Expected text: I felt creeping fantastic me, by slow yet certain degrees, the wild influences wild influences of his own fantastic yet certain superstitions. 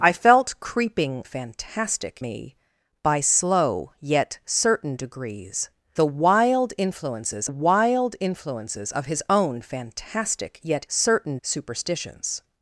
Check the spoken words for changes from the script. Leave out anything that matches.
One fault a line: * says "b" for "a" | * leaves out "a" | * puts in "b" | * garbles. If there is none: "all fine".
all fine